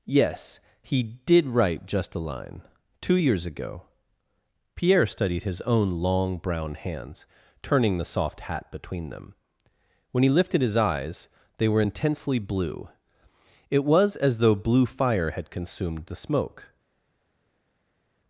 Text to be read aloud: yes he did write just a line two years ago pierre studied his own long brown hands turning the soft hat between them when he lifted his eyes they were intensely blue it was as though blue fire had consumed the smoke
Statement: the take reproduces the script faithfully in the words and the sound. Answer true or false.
true